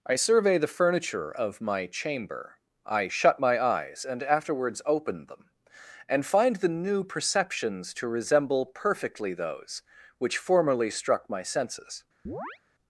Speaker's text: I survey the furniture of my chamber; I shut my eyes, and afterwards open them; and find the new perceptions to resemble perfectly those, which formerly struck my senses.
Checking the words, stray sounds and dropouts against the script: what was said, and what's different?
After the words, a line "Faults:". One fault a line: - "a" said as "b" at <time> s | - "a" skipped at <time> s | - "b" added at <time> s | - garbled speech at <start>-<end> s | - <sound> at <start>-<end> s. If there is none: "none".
I survey the furniture of my chamber; I shut my eyes, and afterwards open them; and find the new perceptions to resemble perfectly those, which formerly struck my senses.
Faults:
- chirp at 12.3-12.6 s